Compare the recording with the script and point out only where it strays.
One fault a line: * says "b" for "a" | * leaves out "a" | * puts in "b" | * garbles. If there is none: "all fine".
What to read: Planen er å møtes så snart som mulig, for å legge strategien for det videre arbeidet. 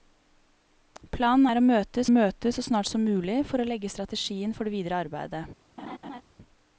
* puts in "møtes"